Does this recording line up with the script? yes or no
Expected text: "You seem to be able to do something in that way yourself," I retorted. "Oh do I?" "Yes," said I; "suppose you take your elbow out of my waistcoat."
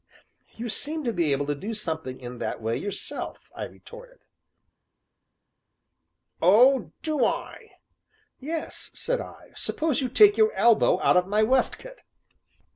yes